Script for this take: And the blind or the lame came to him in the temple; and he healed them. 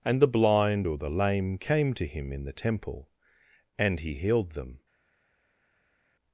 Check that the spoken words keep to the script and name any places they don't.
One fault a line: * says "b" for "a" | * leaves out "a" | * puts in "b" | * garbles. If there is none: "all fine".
all fine